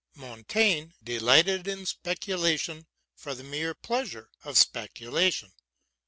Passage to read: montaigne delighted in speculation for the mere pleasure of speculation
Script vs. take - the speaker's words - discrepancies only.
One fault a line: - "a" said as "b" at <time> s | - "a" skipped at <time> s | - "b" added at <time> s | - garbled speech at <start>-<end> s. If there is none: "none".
none